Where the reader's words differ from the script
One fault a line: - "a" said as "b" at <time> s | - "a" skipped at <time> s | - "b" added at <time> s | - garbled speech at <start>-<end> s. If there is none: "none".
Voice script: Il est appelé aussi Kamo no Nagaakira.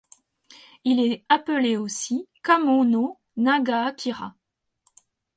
none